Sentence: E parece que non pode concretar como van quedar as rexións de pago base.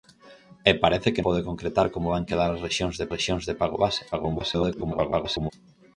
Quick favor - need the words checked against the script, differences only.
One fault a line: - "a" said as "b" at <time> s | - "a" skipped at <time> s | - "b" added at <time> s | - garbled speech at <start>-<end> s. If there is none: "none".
- "non" skipped at 1.2 s
- "rexións de" added at 3.1 s
- garbled speech at 4.1-5.5 s